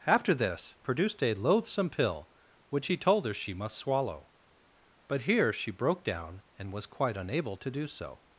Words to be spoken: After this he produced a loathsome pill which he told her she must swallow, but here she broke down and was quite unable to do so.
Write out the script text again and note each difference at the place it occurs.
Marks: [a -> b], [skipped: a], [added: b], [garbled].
After this [skipped: he] produced a loathsome pill which he told her she must swallow, but here she broke down and was quite unable to do so.